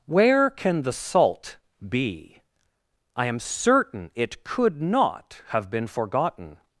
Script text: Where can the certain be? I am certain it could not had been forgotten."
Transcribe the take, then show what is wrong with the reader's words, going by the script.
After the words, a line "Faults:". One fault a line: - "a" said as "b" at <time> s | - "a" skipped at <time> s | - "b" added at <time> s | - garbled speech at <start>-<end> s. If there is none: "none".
Where can the salt be? I am certain it could not have been forgotten."
Faults:
- "certain" said as "salt" at 0.9 s
- "had" said as "have" at 5.5 s